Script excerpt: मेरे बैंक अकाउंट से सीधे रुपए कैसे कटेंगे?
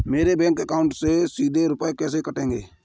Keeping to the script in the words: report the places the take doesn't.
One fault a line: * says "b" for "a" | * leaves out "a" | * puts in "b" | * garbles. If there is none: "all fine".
all fine